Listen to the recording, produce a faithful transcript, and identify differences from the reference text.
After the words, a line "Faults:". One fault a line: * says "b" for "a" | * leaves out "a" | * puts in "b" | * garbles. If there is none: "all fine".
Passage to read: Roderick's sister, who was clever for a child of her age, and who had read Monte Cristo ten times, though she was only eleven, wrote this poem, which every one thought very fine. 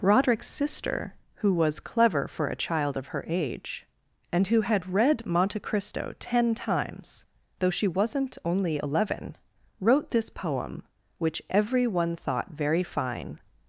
Roderick's sister, who was clever for a child of her age, and who had read Monte Cristo ten times, though she wasn't only eleven, wrote this poem, which every one thought very fine.
Faults:
* says "wasn't" for "was"